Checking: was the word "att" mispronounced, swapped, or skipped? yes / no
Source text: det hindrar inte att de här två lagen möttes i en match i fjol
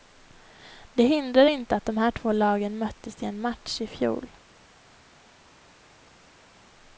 no